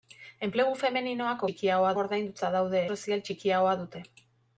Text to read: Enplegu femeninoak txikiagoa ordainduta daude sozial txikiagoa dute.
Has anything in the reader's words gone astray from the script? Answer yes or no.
no